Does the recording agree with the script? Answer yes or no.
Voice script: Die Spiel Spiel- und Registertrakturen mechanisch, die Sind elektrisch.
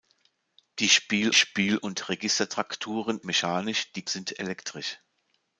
yes